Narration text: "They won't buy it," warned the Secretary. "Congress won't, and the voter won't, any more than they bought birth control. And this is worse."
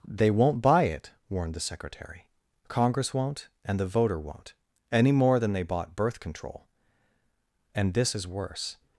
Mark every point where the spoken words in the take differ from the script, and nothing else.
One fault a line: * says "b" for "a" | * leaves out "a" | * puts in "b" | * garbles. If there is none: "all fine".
all fine